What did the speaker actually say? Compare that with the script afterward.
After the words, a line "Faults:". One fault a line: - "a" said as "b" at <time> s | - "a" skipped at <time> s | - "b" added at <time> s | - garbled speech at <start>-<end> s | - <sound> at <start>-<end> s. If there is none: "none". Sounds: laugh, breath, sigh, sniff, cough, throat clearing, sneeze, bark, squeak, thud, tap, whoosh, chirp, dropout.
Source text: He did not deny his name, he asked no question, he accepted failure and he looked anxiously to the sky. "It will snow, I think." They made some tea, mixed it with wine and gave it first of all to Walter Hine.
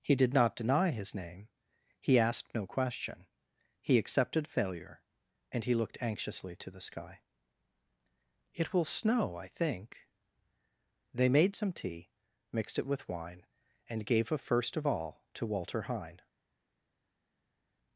He did not deny his name, he asked no question, he accepted failure and he looked anxiously to the sky. "It will snow, I think." They made some tea, mixed it with wine and gave a first of all to Walter Hine.
Faults:
- "it" said as "a" at 14.3 s